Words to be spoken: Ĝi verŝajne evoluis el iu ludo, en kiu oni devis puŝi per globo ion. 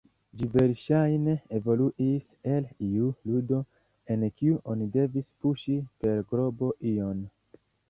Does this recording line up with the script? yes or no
yes